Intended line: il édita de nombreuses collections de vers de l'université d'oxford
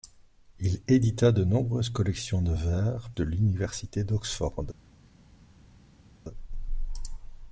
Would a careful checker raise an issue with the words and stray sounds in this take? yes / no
no